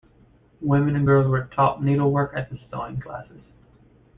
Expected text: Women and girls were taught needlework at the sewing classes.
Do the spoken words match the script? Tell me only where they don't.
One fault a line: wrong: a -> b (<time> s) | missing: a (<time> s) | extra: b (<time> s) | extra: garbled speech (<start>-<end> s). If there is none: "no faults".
no faults